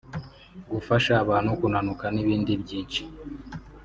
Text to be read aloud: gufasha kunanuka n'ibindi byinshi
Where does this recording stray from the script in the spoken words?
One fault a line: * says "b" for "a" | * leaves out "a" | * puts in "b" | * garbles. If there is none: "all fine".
* puts in "abantu"